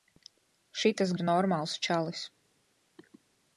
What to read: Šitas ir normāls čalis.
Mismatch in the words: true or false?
false